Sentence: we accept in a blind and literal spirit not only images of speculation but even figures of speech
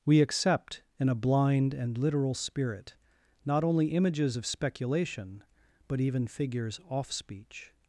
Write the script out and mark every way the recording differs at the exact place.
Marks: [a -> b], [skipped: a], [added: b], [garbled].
we accept in a blind and literal spirit not only images of speculation but even figures [of -> off] speech